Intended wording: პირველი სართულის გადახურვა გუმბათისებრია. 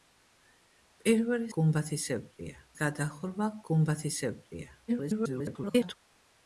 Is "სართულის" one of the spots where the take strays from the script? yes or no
yes